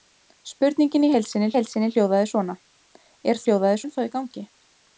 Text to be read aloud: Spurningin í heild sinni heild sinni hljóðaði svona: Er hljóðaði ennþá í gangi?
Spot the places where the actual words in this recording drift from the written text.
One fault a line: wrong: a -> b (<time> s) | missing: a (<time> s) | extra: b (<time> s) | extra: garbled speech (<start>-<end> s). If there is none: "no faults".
no faults